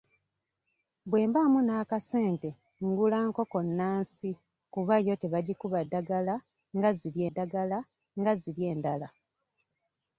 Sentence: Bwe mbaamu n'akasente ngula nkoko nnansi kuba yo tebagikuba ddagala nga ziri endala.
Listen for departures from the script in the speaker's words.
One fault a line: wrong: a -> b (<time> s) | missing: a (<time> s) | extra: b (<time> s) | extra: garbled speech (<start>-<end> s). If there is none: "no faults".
extra: ddagala nga ziri (7.3 s)